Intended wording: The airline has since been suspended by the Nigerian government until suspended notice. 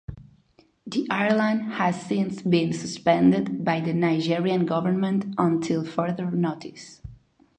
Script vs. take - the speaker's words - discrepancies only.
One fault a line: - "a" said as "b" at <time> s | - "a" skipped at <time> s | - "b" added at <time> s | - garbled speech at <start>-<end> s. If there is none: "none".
- "suspended" said as "further" at 5.8 s